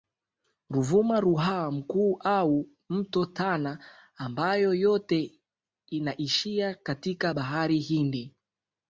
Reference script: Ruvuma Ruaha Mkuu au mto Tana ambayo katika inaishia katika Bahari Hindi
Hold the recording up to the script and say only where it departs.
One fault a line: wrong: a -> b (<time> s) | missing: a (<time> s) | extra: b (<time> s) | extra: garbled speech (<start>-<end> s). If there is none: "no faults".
wrong: katika -> yote (4.7 s)